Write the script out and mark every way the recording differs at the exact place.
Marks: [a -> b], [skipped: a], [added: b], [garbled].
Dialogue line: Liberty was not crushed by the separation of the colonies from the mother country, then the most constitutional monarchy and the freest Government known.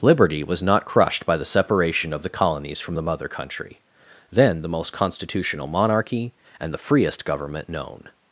Liberty was not crushed by the separation of the colonies from the mother country, then the most constitutional monarchy and the freest Government known.